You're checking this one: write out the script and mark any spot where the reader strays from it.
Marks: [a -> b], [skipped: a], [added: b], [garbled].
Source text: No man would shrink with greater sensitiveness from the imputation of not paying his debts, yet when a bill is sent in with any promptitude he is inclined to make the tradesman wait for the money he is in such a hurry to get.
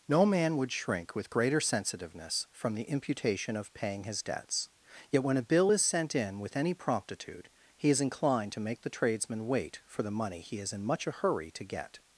No man would shrink with greater sensitiveness from the imputation of [skipped: not] paying his debts, yet when a bill is sent in with any promptitude he is inclined to make the tradesman wait for the money he is in [such -> much] a hurry to get.